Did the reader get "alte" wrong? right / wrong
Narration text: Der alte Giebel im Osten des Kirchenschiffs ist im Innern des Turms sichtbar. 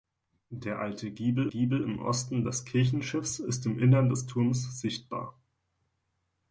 right